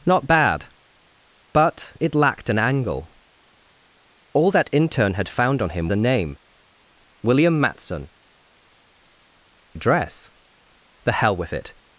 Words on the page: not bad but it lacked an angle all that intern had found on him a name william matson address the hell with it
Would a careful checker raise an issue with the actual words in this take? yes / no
no